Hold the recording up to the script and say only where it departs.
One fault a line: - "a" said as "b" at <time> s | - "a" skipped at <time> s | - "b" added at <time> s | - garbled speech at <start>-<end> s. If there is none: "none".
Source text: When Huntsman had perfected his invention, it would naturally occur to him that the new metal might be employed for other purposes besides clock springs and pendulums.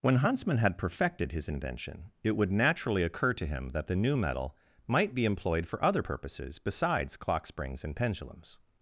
none